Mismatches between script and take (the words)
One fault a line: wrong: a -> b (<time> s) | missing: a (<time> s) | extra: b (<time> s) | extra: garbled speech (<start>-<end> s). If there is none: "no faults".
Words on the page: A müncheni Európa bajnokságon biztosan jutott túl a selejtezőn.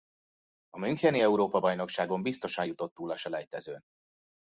no faults